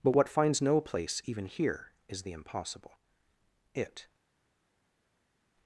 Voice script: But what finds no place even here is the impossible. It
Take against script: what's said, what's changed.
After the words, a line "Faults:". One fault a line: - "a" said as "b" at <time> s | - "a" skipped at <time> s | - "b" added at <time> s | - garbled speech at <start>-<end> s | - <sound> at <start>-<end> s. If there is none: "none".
But what finds no place even here is the impossible. It
Faults:
none